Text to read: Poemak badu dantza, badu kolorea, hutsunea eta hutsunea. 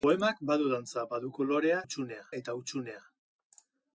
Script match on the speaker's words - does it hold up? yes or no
yes